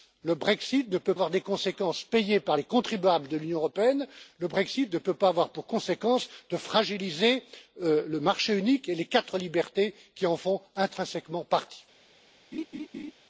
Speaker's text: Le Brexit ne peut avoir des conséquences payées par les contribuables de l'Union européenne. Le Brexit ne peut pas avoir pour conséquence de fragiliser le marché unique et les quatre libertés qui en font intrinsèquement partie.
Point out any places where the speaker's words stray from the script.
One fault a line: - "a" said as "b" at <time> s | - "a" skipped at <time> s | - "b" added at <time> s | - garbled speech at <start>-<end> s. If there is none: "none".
none